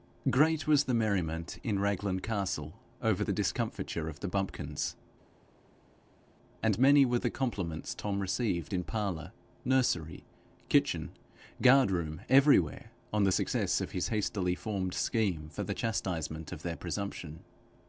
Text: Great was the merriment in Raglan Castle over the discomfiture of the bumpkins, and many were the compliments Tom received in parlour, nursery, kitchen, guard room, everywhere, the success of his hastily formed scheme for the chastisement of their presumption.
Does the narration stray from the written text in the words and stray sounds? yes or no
yes